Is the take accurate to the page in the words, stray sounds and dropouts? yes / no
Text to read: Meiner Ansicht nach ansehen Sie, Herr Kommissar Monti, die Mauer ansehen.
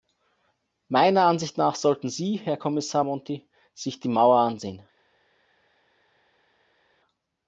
no